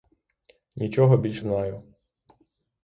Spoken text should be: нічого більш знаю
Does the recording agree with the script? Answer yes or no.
yes